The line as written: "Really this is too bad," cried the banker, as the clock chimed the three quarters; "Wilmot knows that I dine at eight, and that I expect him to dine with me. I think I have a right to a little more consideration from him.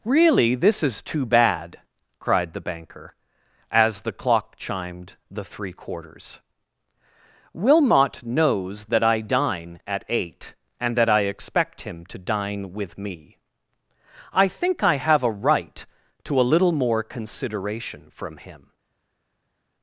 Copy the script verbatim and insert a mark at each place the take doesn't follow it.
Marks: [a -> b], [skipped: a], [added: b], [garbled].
"Really this is too bad," cried the banker, as the clock chimed the three quarters; "Wilmot knows that I dine at eight, and that I expect him to dine with me. I think I have a right to a little more consideration from him.